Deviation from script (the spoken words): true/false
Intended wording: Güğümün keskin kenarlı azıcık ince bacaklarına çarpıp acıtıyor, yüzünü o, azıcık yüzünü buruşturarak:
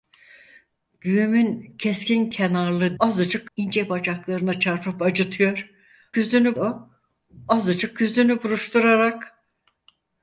false